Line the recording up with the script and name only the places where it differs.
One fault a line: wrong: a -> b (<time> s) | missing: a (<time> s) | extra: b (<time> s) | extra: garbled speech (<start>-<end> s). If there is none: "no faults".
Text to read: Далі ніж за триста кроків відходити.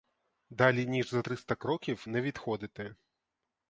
extra: не (2.1 s)